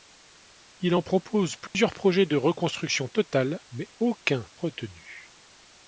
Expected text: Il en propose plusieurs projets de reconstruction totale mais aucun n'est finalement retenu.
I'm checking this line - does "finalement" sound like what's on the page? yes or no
no